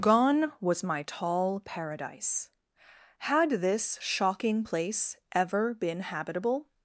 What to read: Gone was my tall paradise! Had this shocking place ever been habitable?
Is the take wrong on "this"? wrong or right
right